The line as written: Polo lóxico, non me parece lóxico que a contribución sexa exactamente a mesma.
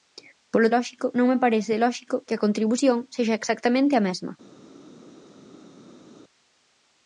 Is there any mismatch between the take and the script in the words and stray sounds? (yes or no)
no